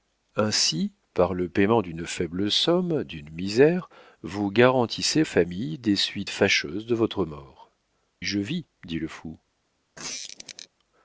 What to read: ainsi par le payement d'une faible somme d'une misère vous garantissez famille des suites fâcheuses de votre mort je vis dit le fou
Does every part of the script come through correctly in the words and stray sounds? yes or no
no